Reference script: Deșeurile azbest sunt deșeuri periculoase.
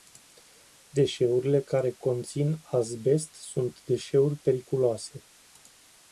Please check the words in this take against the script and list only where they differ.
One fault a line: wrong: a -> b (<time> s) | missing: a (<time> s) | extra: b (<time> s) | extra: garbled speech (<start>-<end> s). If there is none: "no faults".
extra: care conțin (1.6 s)